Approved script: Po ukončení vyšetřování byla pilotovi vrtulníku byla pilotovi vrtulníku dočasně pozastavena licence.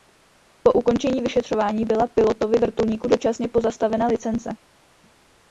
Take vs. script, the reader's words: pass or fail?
fail